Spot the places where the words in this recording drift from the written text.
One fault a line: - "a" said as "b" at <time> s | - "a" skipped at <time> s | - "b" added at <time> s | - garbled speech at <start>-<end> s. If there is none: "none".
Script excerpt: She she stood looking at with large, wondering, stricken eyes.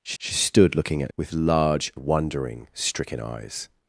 none